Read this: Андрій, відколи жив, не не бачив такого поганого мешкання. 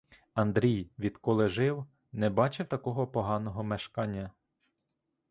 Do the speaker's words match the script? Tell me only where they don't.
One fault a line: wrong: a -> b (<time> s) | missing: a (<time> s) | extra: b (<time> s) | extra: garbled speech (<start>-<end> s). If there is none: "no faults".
missing: не (2.3 s)